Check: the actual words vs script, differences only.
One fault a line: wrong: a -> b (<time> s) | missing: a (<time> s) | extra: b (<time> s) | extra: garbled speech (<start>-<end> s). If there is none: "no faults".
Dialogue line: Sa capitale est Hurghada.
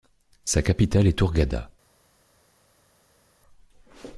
no faults